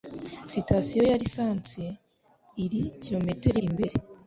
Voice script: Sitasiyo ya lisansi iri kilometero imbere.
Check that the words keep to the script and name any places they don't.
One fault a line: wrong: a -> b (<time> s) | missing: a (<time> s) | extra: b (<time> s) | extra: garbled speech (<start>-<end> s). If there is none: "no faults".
no faults